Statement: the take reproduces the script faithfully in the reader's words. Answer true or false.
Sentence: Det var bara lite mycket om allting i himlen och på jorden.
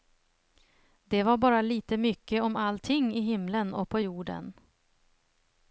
true